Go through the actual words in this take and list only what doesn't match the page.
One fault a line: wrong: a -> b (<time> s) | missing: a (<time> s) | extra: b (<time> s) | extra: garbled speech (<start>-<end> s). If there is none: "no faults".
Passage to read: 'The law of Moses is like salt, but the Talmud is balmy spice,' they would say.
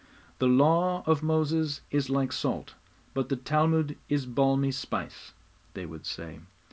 no faults